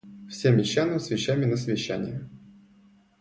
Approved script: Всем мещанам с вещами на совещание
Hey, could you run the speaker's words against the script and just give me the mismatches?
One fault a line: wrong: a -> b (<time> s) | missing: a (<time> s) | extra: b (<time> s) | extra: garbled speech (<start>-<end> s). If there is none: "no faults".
no faults